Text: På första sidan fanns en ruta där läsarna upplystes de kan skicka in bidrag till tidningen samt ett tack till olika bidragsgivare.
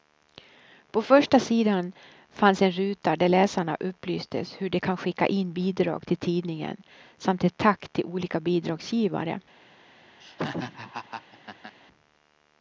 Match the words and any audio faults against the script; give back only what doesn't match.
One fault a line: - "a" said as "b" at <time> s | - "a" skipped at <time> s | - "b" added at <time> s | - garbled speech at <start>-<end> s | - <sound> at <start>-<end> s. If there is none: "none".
- "hur" added at 4.6 s
- laugh at 10.2-11.8 s